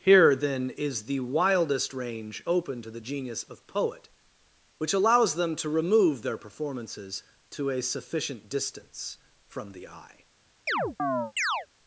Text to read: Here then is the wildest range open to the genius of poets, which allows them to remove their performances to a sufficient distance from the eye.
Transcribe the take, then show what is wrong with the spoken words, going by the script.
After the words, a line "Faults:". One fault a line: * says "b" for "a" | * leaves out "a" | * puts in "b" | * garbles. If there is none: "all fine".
Here then is the wildest range open to the genius of poet, which allows them to remove their performances to a sufficient distance from the eye.
Faults:
* says "poet" for "poets"